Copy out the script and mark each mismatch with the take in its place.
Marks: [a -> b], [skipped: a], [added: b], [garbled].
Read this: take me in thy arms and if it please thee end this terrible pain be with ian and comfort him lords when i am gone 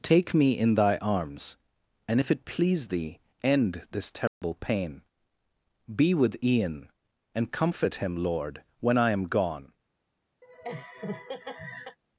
take me in thy arms and if it please thee end this terrible pain be with ian and comfort him [lords -> lord] when i am gone